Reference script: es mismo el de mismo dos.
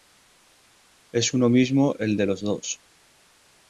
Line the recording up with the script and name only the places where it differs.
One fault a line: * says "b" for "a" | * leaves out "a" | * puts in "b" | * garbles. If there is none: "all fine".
* puts in "uno"
* says "los" for "mismo"